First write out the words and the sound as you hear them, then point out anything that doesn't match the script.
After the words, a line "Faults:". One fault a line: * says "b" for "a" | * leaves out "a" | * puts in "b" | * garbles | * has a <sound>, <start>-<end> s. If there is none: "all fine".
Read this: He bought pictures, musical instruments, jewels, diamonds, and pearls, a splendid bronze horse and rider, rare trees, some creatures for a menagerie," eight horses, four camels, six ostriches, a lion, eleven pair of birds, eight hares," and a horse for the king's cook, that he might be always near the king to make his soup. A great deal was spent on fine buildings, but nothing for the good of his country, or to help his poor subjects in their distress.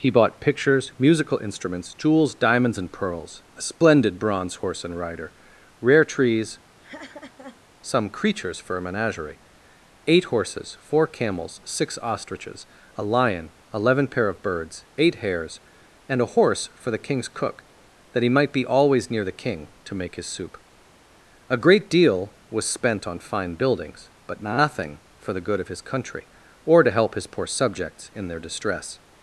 He bought pictures, musical instruments, jewels, diamonds, and pearls, a splendid bronze horse and rider, rare trees, some creatures for a menagerie," eight horses, four camels, six ostriches, a lion, eleven pair of birds, eight hares," and a horse for the king's cook, that he might be always near the king to make his soup. A great deal was spent on fine buildings, but nothing for the good of his country, or to help his poor subjects in their distress.
Faults:
* has a laugh, 6.8-7.6 s